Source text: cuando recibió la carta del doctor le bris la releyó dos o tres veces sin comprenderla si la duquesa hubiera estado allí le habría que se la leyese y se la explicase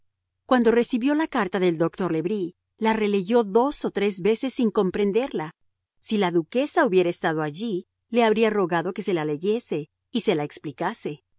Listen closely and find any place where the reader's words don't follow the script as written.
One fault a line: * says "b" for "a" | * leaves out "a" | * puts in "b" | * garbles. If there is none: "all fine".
* puts in "rogado"